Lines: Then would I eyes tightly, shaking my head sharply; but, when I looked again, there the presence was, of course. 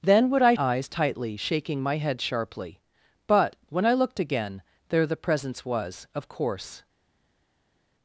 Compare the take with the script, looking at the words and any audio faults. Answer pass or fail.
pass